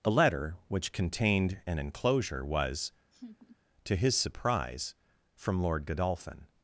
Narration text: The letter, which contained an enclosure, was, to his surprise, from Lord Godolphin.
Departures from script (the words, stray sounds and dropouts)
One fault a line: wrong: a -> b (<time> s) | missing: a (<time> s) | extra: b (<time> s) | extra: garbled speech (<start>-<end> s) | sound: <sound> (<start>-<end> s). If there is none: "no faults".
wrong: The -> A (0.0 s)
sound: laugh (3.1-3.6 s)